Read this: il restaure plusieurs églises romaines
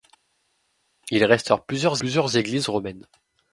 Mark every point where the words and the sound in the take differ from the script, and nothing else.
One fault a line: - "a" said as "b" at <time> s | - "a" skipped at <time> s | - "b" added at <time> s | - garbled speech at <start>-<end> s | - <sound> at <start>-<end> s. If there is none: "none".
- "plusieurs" added at 2.0 s